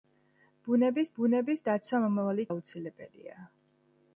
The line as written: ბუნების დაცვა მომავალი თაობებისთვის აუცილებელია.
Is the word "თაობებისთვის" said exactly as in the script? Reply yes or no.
no